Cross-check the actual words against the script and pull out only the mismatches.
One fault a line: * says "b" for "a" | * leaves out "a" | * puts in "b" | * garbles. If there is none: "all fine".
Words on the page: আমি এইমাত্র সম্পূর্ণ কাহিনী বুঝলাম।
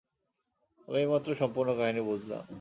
all fine